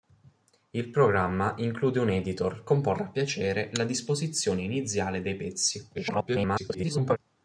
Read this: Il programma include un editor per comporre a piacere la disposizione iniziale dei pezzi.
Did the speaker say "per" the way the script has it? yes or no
no